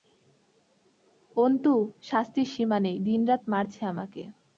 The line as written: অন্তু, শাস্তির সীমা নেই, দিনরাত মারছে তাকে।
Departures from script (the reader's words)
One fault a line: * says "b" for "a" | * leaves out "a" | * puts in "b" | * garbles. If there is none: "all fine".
* says "আমাকে" for "তাকে"